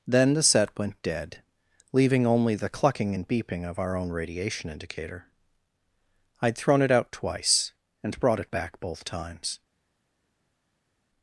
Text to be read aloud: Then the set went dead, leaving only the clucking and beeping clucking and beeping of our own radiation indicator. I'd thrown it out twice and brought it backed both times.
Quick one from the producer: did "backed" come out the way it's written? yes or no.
no